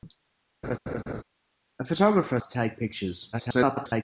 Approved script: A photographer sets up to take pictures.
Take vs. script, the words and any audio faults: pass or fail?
fail